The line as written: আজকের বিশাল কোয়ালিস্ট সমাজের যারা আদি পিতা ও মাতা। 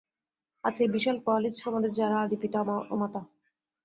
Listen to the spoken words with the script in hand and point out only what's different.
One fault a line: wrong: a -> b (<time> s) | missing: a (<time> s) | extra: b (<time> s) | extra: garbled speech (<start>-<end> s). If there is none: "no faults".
no faults